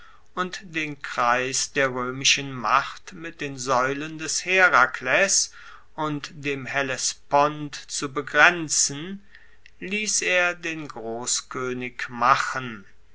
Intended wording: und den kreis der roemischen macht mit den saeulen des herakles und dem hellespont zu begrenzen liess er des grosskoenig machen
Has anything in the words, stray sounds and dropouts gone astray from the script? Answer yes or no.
yes